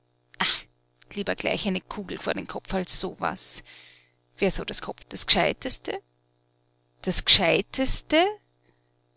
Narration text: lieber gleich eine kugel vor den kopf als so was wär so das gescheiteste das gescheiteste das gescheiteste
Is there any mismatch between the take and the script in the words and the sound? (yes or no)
yes